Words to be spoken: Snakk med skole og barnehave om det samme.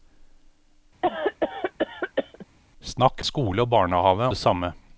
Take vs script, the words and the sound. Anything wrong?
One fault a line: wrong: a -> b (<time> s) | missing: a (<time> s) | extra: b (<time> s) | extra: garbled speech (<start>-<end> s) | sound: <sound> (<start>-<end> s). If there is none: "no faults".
sound: cough (1.0-2.5 s)
missing: med (3.2 s)
missing: om (4.3 s)